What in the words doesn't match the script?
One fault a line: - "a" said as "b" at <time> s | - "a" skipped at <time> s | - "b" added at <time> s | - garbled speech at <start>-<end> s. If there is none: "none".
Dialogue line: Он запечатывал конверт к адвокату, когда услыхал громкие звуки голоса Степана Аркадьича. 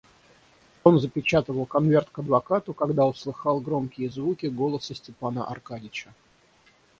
none